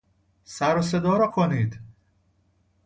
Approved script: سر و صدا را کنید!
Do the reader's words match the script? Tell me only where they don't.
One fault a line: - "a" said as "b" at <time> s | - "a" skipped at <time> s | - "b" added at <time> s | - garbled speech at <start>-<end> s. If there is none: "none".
none